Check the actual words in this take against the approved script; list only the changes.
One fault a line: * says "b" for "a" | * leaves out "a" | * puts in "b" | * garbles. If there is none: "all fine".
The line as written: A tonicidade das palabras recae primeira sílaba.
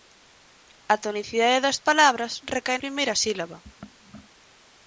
all fine